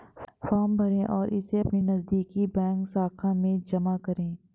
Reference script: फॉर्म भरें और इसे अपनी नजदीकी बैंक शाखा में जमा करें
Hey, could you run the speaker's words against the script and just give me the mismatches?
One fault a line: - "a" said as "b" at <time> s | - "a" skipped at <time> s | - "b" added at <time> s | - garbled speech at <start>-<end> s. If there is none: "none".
none